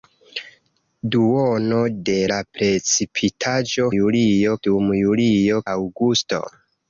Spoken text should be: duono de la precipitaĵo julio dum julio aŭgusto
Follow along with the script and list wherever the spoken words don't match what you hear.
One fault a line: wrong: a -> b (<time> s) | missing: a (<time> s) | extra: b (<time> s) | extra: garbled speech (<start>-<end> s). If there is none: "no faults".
no faults